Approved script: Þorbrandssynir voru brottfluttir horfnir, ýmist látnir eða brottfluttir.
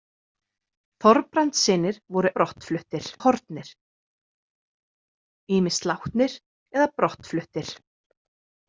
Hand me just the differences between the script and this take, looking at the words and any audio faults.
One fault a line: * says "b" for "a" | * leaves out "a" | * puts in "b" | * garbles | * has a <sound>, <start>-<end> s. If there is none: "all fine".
all fine